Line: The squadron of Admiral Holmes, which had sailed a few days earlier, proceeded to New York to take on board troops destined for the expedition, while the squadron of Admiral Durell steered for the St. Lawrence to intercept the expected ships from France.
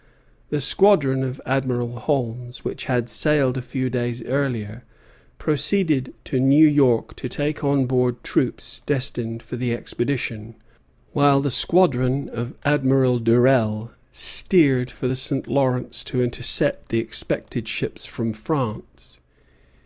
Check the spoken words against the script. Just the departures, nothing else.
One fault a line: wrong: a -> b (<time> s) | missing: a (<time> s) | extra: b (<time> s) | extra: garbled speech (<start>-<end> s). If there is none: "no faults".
no faults